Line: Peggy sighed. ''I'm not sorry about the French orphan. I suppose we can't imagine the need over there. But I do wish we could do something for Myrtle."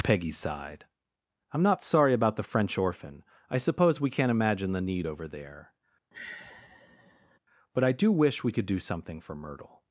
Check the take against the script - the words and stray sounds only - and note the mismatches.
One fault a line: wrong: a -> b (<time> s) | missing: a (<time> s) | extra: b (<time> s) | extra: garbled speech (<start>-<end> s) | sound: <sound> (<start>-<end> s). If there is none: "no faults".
sound: sigh (6.1-7.4 s)